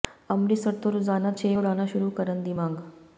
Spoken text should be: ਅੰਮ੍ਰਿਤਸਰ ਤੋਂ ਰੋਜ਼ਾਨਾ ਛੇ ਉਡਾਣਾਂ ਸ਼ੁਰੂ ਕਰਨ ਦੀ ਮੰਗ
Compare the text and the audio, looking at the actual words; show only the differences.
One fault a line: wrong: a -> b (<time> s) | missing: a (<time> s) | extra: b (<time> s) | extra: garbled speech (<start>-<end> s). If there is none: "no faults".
no faults